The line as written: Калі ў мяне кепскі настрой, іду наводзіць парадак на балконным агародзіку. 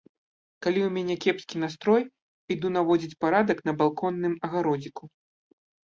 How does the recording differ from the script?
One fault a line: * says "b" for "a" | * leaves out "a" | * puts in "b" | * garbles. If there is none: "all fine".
all fine